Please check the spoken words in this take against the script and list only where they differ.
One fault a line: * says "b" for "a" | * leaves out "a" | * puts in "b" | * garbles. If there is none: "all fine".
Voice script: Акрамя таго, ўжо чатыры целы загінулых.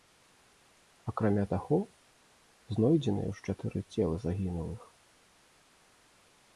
* puts in "знойдзеныя"